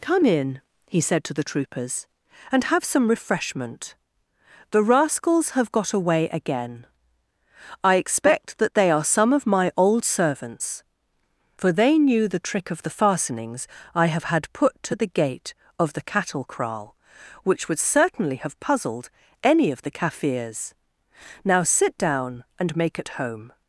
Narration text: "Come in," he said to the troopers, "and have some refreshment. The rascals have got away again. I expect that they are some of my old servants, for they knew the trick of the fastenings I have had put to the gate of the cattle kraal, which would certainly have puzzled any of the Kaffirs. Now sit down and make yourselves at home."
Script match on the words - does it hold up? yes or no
no